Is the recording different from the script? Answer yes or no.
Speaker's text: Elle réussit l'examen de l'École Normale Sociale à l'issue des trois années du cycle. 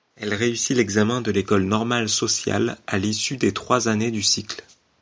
no